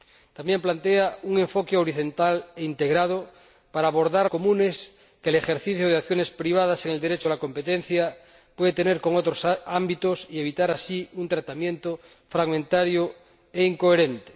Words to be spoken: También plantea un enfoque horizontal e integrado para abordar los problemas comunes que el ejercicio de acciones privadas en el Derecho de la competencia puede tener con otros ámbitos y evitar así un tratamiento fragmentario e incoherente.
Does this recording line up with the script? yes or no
no